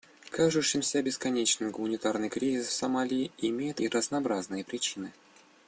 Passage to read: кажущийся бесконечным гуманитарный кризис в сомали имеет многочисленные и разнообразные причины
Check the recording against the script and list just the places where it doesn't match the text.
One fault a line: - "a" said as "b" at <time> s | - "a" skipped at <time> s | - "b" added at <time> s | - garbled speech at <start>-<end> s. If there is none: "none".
- "в" skipped at 2.7 s
- "многочисленные" skipped at 3.8 s